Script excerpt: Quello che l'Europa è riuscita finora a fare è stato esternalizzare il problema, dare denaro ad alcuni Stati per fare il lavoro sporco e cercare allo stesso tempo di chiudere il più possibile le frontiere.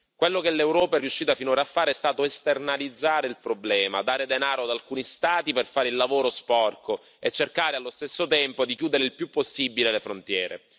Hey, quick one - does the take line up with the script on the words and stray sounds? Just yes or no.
yes